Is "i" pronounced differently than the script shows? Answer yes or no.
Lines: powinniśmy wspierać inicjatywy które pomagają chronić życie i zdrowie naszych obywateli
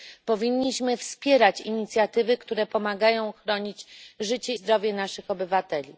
yes